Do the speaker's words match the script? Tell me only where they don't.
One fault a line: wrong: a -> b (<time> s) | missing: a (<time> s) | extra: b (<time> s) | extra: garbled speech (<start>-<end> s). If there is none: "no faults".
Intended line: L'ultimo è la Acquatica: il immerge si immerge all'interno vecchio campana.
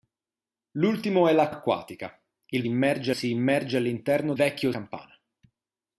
no faults